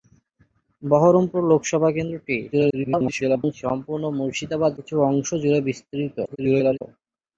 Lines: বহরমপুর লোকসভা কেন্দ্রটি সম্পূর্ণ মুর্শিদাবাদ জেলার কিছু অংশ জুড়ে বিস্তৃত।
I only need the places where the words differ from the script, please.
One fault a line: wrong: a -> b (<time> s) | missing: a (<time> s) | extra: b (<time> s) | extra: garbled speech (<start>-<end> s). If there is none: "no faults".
extra: garbled speech (2.5-3.5 s)
missing: জেলার (4.7 s)
extra: garbled speech (6.2-6.8 s)